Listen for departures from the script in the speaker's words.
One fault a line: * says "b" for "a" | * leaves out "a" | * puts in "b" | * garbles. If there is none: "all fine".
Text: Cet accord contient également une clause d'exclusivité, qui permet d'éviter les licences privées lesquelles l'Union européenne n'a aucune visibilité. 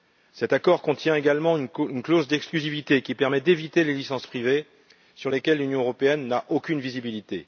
* puts in "sur"